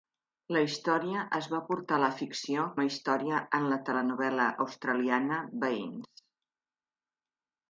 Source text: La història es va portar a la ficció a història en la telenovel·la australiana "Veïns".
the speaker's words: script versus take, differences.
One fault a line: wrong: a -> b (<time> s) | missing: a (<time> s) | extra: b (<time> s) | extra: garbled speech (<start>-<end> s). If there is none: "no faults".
no faults